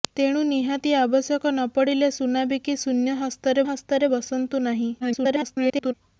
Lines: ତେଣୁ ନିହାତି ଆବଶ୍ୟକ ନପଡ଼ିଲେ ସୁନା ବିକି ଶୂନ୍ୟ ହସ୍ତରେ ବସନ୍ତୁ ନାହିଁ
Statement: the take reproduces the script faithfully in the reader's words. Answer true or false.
false